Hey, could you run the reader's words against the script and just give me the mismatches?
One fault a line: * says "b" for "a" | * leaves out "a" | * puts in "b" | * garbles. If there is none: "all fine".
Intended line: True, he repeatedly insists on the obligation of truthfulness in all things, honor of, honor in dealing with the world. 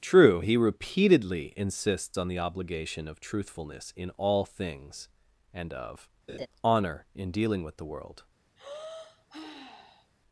* says "and" for "honor"